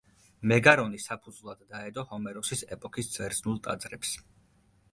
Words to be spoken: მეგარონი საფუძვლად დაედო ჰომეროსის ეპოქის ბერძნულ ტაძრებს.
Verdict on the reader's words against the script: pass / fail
pass